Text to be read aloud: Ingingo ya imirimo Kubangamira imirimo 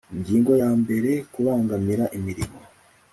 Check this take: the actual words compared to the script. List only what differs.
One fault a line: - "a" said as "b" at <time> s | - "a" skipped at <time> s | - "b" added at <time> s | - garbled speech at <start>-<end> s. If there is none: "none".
- "imirimo" said as "mbere" at 0.8 s